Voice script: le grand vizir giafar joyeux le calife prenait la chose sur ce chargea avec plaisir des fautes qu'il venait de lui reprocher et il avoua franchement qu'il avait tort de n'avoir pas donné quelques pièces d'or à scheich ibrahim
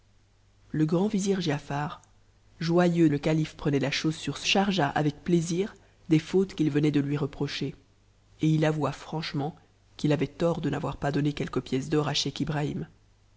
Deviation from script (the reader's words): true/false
false